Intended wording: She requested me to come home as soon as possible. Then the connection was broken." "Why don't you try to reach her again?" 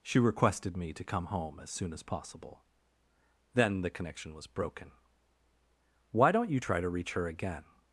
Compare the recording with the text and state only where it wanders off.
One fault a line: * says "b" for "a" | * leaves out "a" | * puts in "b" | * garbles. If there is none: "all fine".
all fine